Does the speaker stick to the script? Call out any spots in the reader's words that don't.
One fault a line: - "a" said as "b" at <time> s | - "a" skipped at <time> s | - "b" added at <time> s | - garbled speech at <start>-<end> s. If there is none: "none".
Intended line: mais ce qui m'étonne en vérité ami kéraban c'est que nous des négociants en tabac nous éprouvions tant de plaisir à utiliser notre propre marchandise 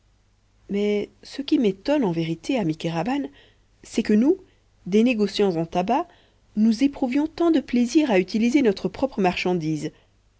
none